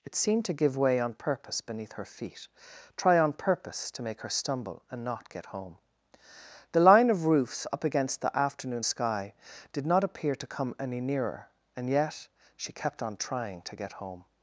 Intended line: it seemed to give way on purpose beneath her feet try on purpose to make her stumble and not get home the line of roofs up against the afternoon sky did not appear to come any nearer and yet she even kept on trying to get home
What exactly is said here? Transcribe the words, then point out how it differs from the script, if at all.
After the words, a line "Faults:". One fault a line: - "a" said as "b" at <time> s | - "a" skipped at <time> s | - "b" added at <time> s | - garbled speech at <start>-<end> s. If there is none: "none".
it seemed to give way on purpose beneath her feet try on purpose to make her stumble and not get home the line of roofs up against the afternoon sky did not appear to come any nearer and yet she kept on trying to get home
Faults:
- "even" skipped at 12.7 s